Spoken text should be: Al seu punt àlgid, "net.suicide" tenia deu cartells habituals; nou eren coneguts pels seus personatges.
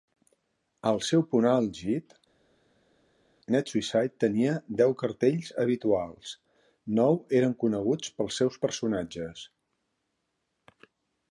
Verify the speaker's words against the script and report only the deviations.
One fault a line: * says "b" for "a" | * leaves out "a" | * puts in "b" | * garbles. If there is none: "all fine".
all fine